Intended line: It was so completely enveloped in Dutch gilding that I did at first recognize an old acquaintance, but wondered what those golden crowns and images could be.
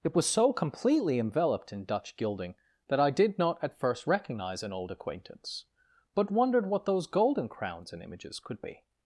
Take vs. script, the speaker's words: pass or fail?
fail